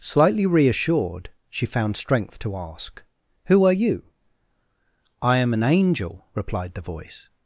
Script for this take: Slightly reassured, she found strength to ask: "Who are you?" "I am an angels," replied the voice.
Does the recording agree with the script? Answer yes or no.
no